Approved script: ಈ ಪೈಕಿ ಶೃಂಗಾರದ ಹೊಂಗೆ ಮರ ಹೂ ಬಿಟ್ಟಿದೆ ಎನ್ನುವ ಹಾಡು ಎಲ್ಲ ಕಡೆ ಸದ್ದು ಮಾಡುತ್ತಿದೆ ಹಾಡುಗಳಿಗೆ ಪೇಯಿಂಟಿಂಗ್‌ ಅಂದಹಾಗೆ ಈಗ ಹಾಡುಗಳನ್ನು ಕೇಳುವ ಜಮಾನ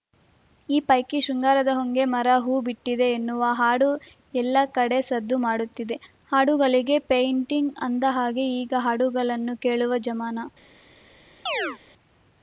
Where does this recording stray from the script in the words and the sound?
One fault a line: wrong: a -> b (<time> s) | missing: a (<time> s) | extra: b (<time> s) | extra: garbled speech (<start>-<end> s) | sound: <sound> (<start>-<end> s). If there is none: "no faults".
sound: chirp (11.5-11.8 s)